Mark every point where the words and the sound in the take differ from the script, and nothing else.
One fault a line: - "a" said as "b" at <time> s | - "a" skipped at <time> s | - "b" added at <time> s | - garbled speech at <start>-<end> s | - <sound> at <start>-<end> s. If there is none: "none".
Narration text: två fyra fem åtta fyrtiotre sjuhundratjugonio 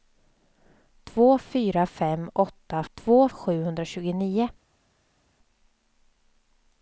- "fyrtiotre" said as "två" at 2.9 s